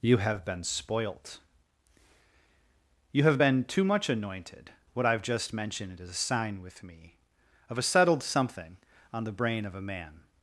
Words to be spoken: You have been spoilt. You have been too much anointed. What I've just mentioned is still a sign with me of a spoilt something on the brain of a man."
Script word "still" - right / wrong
wrong